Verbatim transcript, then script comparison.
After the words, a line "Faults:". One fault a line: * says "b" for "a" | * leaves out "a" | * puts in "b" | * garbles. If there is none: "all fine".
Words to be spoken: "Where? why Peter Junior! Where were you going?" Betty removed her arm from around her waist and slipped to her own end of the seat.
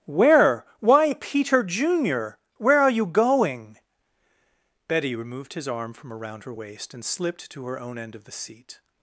"Where? why Peter Junior! Where are you going?" Betty removed his arm from around her waist and slipped to her own end of the seat.
Faults:
* says "are" for "were"
* says "his" for "her"